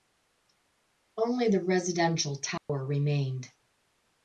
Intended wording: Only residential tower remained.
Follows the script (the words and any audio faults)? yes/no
no